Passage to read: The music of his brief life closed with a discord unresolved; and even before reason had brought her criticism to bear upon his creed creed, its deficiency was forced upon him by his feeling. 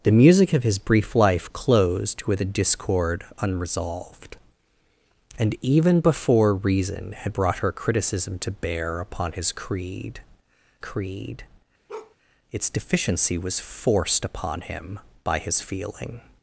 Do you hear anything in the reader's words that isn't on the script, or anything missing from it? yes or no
no